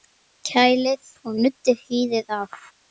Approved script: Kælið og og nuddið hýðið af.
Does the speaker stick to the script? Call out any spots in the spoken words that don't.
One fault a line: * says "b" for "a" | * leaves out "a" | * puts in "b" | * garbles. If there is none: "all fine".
* leaves out "og"